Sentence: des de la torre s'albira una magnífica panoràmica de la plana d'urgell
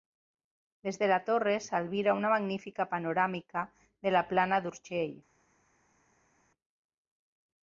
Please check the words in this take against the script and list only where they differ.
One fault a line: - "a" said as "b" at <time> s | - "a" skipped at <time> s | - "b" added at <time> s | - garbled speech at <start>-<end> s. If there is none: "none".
none